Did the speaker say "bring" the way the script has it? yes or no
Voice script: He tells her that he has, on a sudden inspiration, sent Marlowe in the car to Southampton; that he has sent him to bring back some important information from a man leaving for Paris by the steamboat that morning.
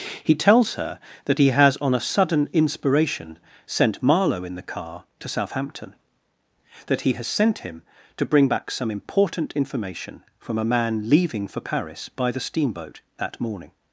yes